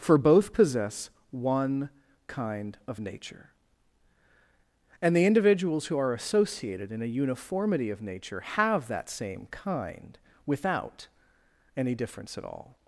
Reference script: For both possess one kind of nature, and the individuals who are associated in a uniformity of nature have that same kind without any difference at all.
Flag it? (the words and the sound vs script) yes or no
no